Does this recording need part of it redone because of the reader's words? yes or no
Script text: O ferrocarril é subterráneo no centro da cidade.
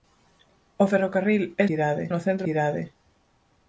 yes